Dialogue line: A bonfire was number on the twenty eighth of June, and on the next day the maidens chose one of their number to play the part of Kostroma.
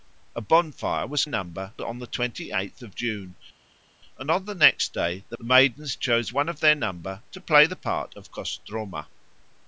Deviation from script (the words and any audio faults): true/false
false